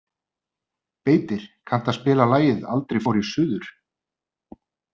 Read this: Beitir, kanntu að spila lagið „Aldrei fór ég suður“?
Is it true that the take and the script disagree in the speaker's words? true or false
false